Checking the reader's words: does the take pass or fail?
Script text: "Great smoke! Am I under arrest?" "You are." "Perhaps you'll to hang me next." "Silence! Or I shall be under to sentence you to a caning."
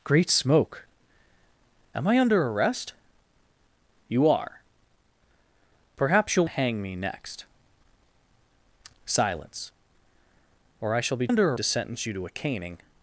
pass